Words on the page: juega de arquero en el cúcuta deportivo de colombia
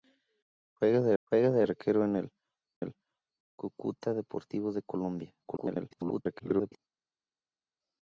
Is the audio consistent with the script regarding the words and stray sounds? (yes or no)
no